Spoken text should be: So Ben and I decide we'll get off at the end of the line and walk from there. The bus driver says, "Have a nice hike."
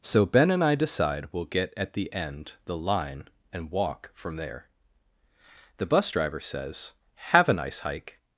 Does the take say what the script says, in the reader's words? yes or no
no